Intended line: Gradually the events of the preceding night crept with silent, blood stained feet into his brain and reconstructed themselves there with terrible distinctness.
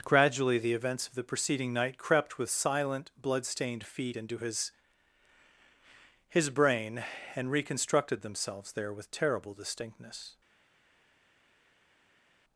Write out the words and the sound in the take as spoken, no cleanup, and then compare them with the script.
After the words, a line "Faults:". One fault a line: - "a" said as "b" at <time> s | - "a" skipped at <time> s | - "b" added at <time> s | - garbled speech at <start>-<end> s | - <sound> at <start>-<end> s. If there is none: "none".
Gradually the events of the preceding night crept with silent, blood stained feet into his his brain and reconstructed themselves there with terrible distinctness.
Faults:
- "his" added at 6.3 s